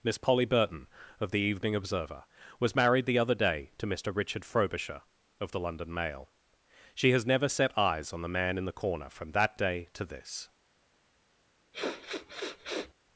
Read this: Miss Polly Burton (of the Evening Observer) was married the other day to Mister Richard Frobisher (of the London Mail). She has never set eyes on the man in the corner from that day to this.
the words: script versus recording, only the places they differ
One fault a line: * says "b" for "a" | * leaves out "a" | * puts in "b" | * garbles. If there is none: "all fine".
all fine